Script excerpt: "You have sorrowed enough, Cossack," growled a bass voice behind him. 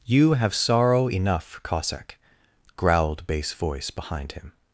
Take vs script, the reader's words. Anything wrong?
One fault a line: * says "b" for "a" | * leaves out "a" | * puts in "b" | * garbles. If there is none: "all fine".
* says "sorrow" for "sorrowed"
* leaves out "a"